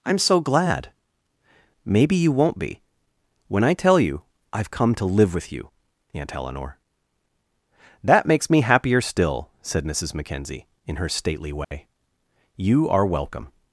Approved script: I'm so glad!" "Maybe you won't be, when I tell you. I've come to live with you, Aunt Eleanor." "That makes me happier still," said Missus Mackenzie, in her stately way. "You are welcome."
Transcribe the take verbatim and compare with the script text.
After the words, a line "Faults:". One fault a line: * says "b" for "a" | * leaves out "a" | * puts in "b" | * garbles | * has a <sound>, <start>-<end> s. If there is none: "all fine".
I'm so glad!" "Maybe you won't be, when I tell you. I've come to live with you, Aunt Eleanor." "That makes me happier still," said Missus Mackenzie, in her stately way. "You are welcome."
Faults:
* has a dropout, 11.6-11.7 s